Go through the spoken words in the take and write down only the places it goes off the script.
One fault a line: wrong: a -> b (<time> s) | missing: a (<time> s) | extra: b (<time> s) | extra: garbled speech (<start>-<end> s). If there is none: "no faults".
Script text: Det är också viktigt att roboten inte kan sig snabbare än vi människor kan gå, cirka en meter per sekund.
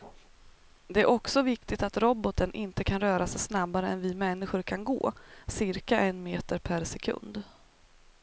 extra: röra (3.0 s)